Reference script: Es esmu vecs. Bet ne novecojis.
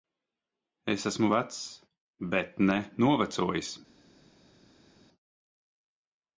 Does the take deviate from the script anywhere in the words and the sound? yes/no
no